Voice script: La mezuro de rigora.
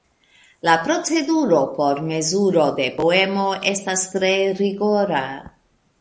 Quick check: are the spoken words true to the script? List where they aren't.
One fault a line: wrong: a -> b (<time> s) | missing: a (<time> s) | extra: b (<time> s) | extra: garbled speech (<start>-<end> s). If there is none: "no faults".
extra: proceduro por (0.8 s)
extra: poemo estas tre (3.0 s)